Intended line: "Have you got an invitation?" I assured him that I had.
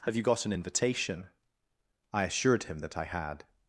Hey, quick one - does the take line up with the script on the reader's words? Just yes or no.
yes